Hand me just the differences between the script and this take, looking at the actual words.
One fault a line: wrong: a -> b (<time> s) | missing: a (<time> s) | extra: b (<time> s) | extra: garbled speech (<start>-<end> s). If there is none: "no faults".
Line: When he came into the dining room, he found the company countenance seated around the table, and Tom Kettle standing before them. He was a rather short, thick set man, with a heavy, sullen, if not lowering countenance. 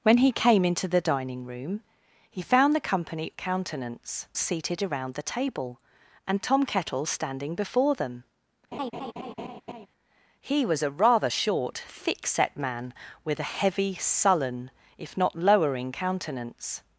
no faults